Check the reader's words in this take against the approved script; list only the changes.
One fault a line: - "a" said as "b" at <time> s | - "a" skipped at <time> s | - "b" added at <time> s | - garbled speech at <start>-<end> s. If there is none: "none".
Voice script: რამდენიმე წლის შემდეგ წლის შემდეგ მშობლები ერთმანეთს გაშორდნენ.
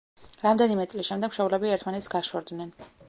- "წლის შემდეგ" skipped at 1.3 s